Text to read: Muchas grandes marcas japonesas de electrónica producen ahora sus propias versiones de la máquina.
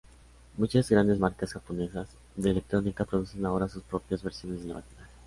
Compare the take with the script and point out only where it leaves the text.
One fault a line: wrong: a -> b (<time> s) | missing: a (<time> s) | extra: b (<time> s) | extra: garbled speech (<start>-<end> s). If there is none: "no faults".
no faults